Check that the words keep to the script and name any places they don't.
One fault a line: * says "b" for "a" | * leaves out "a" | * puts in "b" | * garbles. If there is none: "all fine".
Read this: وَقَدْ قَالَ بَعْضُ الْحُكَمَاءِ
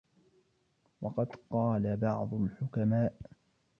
all fine